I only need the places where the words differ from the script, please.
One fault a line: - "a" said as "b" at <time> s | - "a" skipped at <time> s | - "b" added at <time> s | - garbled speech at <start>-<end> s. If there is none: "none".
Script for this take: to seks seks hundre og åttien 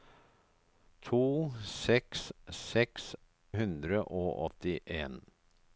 none